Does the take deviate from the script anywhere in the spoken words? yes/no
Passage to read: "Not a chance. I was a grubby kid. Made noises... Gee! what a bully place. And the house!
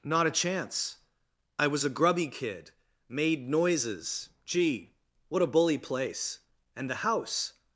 no